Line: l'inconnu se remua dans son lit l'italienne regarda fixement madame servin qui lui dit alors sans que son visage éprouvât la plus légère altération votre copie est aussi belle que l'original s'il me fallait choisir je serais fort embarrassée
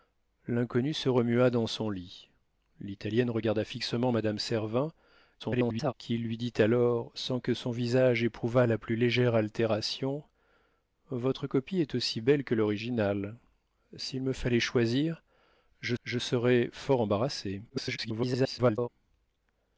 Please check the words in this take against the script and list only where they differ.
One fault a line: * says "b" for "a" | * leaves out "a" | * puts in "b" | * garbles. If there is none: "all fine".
* garbles
* puts in "je"
* garbles